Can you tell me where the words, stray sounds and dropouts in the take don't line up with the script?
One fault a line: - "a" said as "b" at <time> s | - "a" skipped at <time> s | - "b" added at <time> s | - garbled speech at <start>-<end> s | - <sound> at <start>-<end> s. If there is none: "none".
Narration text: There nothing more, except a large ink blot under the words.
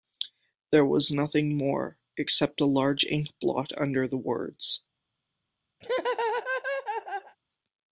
- "was" added at 0.8 s
- laugh at 5.8-7.4 s